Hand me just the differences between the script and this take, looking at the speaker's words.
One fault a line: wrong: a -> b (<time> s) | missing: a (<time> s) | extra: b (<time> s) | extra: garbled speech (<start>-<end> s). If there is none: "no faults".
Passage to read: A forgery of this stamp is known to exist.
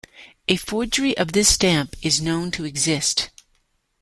no faults